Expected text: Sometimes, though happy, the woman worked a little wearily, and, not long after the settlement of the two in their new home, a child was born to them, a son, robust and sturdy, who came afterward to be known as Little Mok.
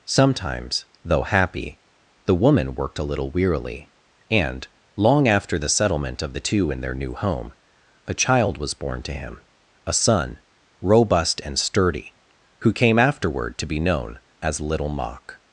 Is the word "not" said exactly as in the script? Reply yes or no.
no